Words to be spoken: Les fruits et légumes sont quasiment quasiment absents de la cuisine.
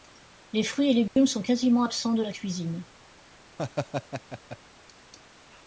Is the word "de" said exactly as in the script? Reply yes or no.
yes